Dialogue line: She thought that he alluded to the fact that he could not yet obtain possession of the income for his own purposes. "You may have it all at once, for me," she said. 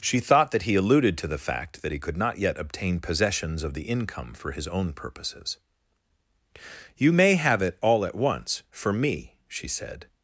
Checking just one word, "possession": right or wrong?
wrong